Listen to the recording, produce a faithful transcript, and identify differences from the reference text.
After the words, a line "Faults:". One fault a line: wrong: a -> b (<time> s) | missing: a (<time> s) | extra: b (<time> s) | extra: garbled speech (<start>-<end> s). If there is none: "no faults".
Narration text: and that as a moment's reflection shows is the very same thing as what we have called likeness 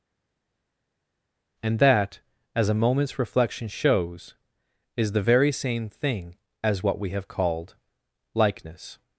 and that as a moment's reflection shows is the very same thing as what we have called likeness
Faults:
no faults